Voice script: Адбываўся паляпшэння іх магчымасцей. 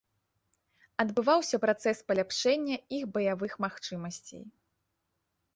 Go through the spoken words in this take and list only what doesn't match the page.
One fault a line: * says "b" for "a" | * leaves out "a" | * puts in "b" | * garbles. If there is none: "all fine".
* puts in "працэс"
* puts in "баявых"